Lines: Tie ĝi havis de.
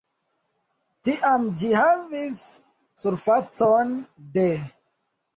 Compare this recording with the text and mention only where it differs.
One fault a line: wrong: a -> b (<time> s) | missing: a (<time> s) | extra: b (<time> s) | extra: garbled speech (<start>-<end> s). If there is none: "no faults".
wrong: Tie -> Tiam (1.1 s)
extra: surfacon (3.0 s)